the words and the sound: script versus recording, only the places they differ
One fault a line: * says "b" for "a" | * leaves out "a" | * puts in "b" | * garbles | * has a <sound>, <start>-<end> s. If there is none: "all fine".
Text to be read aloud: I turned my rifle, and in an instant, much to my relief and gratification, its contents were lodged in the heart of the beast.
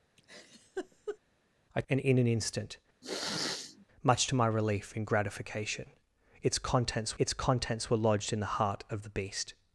* has a laugh, 0.2-1.2 s
* leaves out "turned my rifle"
* has a sniff, 3.0-3.9 s
* puts in "its contents"